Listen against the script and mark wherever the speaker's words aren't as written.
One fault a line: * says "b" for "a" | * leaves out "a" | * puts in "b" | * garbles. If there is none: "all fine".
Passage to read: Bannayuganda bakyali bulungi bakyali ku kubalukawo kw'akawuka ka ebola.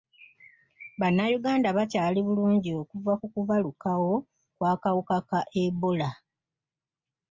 * says "okuva" for "bakyali"